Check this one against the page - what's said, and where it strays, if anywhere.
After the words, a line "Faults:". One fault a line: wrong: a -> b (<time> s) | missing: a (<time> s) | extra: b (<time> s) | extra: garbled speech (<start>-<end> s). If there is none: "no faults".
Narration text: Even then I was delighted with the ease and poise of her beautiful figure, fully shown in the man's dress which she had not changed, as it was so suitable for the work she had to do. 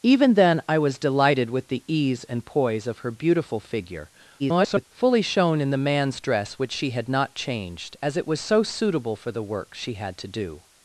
Even then I was delighted with the ease and poise of her beautiful figure, [garbled] fully shown in the man's dress which she had not changed, as it was so suitable for the work she had to do.
Faults:
extra: garbled speech (4.4-4.9 s)